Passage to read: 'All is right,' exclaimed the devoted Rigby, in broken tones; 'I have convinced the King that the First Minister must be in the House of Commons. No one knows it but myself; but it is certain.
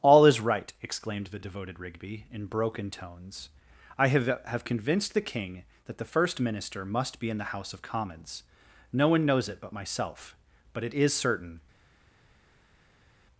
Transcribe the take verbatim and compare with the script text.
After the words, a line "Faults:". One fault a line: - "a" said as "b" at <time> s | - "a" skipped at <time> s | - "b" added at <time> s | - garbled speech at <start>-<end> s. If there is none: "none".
'All is right,' exclaimed the devoted Rigby, in broken tones; 'I have have convinced the King that the First Minister must be in the House of Commons. No one knows it but myself; but it is certain.
Faults:
- "have" added at 4.5 s